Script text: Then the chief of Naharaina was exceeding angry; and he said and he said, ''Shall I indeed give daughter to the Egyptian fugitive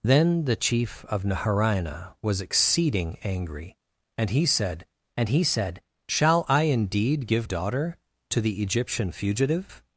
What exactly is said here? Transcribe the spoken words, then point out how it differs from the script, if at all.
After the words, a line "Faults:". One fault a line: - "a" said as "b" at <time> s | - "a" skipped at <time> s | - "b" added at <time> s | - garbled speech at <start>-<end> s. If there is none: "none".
Then the chief of Naharaina was exceeding angry; and he said and he said, ''Shall I indeed give daughter to the Egyptian fugitive
Faults:
none